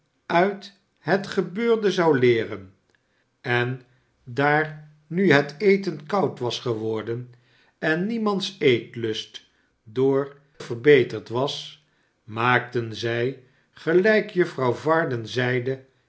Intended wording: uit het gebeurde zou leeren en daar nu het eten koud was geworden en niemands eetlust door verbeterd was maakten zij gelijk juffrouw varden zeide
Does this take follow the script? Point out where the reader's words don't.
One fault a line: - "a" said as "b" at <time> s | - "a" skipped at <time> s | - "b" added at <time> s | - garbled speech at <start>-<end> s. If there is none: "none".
none